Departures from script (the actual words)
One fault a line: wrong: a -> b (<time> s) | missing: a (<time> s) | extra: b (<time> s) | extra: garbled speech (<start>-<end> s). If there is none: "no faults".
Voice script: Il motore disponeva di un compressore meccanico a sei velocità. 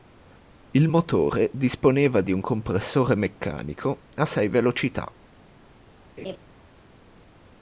no faults